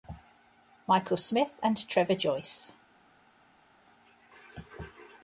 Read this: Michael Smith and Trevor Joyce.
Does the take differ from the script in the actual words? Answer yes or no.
no